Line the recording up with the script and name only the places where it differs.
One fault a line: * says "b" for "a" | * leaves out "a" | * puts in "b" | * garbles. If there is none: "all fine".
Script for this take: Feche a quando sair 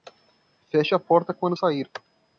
* puts in "porta"